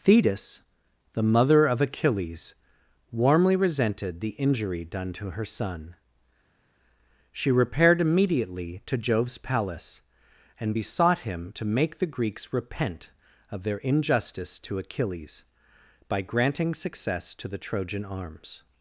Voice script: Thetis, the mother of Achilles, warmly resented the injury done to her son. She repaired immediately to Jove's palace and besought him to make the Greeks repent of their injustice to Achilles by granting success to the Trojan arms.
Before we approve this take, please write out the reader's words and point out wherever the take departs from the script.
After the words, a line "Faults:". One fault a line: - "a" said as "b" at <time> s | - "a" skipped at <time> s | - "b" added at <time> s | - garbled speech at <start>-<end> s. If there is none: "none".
Thetis, the mother of Achilles, warmly resented the injury done to her son. She repaired immediately to Jove's palace and besought him to make the Greeks repent of their injustice to Achilles by granting success to the Trojan arms.
Faults:
none